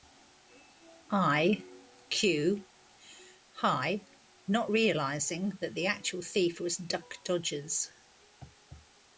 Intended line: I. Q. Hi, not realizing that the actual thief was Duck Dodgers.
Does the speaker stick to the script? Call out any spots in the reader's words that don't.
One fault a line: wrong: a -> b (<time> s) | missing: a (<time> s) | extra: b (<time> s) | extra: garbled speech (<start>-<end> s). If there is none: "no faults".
no faults